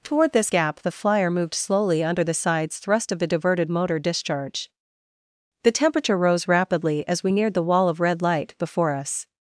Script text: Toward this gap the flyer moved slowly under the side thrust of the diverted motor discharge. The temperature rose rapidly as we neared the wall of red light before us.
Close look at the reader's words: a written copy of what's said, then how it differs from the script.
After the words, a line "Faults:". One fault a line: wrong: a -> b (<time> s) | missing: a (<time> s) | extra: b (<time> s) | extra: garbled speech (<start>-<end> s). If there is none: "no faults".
Toward this gap the flyer moved slowly under the sides thrust of the diverted motor discharge. The temperature rose rapidly as we neared the wall of red light before us.
Faults:
wrong: side -> sides (2.3 s)